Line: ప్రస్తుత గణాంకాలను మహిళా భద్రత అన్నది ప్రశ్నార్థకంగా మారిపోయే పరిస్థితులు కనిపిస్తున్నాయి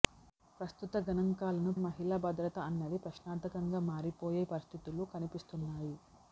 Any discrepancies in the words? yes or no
no